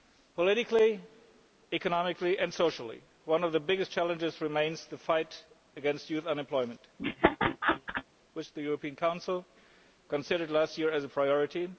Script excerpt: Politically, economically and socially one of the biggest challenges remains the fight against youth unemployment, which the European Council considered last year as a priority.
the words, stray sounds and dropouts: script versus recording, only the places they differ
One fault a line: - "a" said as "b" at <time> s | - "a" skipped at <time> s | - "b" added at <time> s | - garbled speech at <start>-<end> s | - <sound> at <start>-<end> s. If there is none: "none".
- laugh at 7.0-8.0 s